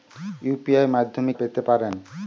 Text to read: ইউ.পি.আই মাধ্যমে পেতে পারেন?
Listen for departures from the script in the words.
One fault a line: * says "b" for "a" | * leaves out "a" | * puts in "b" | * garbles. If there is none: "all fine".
all fine